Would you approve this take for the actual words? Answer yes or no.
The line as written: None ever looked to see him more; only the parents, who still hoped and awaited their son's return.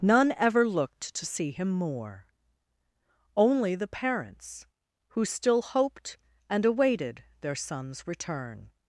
yes